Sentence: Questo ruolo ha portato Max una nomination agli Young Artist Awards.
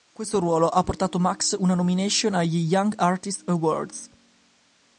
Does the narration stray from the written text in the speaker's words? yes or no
no